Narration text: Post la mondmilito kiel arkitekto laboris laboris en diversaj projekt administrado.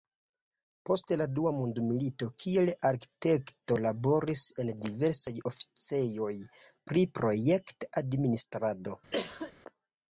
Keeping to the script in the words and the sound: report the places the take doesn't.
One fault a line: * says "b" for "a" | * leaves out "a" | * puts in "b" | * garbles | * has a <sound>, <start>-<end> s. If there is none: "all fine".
* puts in "dua"
* leaves out "laboris"
* puts in "oficejoj pri"
* has a cough, 9.1-9.5 s